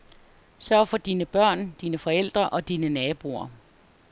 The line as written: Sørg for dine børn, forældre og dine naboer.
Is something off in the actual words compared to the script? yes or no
yes